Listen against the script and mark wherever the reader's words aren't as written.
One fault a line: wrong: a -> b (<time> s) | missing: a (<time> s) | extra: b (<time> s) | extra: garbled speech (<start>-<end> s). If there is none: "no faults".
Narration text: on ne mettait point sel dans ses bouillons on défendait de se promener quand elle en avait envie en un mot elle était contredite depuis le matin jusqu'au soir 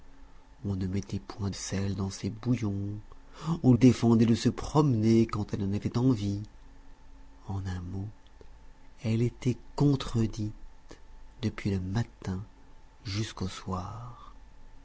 no faults